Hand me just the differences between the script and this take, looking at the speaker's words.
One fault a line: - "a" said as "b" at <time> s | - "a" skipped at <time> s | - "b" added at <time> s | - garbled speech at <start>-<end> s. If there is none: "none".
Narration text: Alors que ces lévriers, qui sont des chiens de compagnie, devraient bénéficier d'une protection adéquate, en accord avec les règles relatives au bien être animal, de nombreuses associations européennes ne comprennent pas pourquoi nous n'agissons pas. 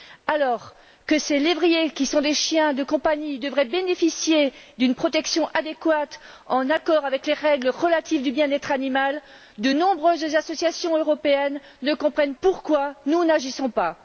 - "pas" skipped at 12.3 s